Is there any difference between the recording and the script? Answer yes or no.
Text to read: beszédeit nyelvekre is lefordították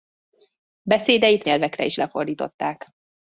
no